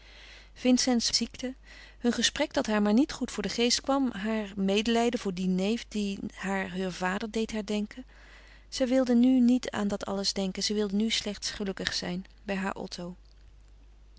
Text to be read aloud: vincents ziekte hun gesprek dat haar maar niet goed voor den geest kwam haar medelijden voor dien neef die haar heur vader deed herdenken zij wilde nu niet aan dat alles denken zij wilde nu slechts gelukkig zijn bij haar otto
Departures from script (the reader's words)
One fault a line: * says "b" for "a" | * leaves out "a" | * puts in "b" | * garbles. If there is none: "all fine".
all fine